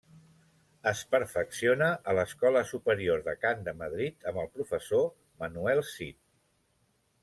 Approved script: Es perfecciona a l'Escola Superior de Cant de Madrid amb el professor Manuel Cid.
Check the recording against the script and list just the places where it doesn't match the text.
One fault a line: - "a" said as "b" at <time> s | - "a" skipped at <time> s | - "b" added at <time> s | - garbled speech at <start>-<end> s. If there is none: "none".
none